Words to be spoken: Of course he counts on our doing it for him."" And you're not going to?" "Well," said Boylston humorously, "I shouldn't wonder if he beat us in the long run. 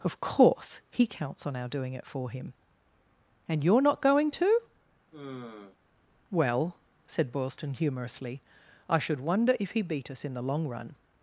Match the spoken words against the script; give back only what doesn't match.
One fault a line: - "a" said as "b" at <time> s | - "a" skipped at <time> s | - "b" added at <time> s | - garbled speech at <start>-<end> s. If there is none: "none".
- "shouldn't" said as "should" at 9.0 s